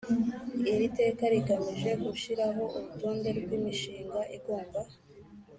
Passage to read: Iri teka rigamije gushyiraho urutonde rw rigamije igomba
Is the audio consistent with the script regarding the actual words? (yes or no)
no